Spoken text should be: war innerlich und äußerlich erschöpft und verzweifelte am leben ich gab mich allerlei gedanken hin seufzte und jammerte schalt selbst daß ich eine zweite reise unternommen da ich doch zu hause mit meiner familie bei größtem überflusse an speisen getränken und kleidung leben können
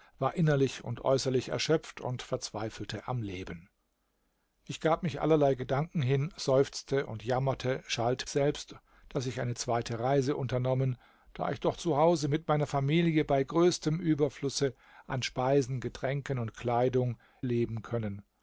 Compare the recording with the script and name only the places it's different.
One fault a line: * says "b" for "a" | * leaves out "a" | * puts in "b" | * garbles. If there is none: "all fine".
all fine